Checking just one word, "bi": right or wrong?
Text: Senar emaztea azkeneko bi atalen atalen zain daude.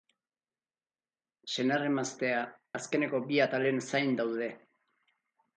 right